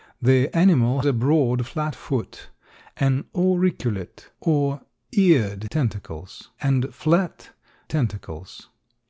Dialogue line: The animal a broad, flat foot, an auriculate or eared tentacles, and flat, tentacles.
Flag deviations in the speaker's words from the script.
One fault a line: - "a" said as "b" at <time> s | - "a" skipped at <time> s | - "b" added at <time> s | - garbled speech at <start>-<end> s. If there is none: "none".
none